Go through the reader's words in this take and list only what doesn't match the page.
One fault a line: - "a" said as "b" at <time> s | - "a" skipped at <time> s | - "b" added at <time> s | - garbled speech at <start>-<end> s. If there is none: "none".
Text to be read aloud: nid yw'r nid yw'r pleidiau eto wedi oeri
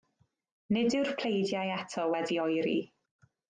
- "nid yw'r" skipped at 1.1 s